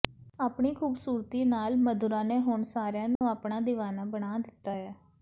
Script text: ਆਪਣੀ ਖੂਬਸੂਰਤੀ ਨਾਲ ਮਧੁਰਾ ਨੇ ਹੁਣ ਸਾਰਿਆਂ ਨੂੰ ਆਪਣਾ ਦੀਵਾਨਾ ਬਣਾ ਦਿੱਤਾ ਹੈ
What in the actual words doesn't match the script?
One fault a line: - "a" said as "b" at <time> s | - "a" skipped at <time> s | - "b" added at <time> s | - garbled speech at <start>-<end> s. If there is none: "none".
none